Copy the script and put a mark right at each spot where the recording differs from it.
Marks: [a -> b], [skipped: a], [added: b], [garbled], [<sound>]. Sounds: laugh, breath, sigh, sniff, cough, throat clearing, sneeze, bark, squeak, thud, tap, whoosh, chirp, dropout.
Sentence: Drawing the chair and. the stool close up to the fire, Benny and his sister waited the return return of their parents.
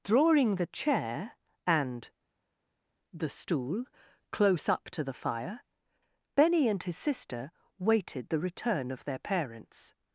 Drawing the chair and. the stool close up to the fire, Benny and his sister waited the return [skipped: return] of their parents.